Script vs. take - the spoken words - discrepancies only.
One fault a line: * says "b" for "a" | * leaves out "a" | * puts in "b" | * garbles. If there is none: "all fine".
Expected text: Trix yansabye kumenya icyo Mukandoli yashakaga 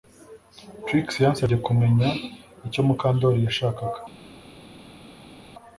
all fine